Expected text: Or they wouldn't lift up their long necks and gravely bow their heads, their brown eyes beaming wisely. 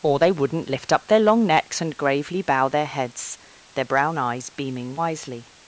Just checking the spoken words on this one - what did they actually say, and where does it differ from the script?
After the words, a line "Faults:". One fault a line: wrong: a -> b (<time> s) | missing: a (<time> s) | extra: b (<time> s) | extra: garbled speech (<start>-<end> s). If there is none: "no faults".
Or they wouldn't lift up their long necks and gravely bow their heads, their brown eyes beaming wisely.
Faults:
no faults